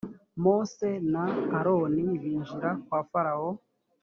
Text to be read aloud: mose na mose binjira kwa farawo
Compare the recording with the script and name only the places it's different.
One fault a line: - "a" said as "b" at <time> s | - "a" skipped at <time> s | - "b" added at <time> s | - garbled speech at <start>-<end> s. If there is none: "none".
- "mose" said as "aroni" at 1.6 s